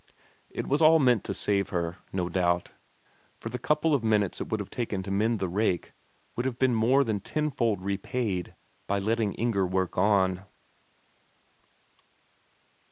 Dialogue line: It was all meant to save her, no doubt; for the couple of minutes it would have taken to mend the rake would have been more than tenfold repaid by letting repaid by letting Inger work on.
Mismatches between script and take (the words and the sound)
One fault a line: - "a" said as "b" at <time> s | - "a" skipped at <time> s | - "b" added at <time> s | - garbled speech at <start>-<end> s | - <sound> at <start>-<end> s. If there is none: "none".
- "repaid by letting" skipped at 9.3 s